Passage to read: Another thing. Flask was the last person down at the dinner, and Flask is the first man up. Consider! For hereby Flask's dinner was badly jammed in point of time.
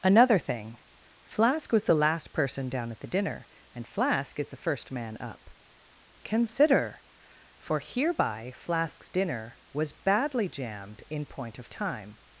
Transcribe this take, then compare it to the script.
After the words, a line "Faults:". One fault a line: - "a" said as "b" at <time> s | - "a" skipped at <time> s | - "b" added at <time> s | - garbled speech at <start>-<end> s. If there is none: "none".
Another thing. Flask was the last person down at the dinner, and Flask is the first man up. Consider! For hereby Flask's dinner was badly jammed in point of time.
Faults:
none